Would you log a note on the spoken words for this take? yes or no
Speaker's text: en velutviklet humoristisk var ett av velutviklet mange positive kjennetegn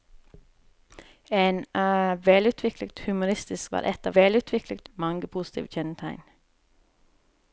no